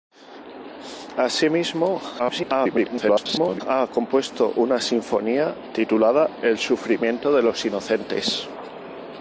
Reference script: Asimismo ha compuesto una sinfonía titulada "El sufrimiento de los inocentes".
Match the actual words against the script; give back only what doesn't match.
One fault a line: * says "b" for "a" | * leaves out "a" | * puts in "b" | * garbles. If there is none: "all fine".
* garbles